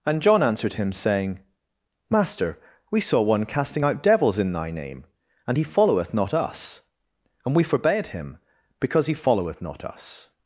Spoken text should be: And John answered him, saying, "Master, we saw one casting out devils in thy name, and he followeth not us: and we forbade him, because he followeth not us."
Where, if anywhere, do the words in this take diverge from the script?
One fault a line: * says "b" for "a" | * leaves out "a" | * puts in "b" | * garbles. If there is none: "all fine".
all fine